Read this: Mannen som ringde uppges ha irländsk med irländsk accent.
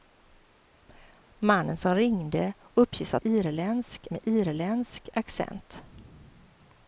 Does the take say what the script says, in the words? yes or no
yes